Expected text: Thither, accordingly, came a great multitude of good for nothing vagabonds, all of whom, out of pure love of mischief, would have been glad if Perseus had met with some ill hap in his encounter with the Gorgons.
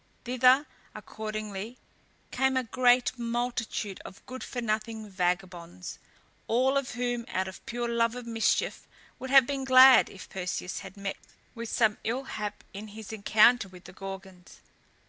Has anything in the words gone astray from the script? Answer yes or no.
no